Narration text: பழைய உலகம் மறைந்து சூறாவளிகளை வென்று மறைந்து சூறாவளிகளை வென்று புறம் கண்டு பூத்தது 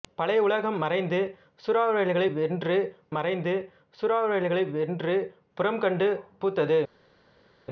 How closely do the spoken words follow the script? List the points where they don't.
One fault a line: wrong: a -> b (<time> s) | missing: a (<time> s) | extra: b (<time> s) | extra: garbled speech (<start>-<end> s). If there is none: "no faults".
no faults